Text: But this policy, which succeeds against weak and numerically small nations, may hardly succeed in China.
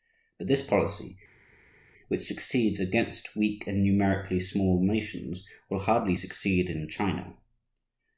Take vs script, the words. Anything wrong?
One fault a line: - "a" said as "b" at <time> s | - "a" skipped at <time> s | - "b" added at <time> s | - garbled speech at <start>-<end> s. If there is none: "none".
- "may" said as "will" at 5.7 s